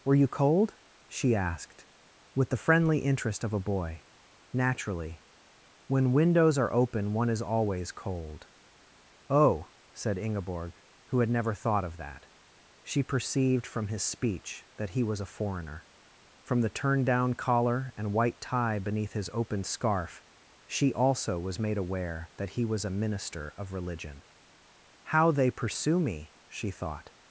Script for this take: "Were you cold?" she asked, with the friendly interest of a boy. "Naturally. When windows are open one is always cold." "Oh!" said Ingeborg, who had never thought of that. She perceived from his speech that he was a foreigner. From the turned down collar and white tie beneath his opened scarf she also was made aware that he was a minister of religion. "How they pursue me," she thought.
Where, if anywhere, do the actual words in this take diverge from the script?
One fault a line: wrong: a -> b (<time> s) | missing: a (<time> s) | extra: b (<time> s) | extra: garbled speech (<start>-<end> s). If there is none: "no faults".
wrong: opened -> open (19.3 s)